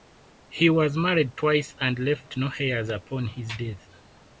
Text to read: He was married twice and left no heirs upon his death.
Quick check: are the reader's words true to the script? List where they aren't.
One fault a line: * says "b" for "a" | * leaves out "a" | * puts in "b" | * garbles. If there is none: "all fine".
all fine